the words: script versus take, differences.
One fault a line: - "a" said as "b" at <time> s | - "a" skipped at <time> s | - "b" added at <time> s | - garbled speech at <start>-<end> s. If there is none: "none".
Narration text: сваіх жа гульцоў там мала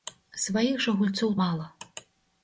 - "там" skipped at 1.4 s